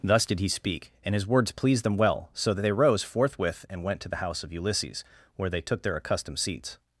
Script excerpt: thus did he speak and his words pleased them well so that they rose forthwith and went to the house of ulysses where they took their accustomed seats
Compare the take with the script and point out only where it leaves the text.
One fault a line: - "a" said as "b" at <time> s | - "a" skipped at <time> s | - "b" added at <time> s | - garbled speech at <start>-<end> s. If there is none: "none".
none